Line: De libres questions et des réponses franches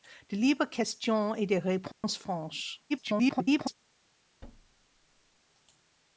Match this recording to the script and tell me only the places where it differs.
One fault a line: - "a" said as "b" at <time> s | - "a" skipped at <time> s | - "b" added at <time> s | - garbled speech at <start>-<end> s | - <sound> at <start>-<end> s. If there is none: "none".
- dropout at 1.9-2.0 s
- garbled speech at 2.9-3.7 s
- thud at 4.4-5.4 s